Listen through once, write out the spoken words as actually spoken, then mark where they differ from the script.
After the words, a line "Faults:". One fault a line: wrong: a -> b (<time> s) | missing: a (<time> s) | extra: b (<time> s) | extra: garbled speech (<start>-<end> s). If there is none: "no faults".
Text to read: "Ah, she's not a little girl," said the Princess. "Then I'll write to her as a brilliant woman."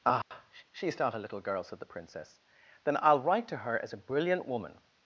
"Ah, she's not a little girl," said the Princess. "Then I'll write to her as a brilliant woman."
Faults:
no faults